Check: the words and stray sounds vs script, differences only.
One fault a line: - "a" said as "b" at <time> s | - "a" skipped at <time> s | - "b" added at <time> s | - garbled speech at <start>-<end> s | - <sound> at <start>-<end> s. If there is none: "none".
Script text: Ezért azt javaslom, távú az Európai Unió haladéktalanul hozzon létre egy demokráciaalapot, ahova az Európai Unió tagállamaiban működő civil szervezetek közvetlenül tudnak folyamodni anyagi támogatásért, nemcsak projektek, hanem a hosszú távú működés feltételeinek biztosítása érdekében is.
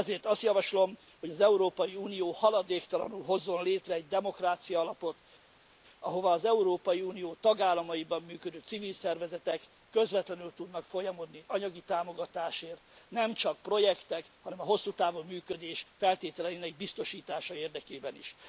- "távú" said as "hogy" at 1.2 s